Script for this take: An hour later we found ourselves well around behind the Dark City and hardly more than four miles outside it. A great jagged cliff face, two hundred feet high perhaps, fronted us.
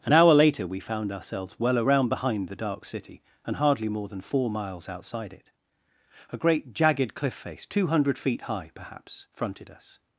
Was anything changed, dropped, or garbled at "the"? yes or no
no